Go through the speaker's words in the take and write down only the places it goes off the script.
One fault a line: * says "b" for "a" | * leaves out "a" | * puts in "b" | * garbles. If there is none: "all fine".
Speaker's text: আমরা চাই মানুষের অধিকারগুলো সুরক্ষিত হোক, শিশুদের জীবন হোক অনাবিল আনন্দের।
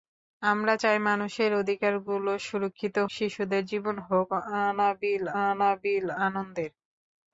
* leaves out "হোক"
* puts in "অনাবিল"